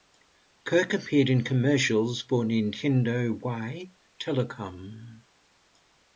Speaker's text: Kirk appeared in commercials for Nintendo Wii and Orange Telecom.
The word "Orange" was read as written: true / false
false